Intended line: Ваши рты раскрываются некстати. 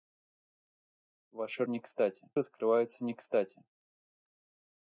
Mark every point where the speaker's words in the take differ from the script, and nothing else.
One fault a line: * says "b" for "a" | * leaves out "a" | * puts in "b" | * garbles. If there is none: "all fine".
* says "некстати" for "рты"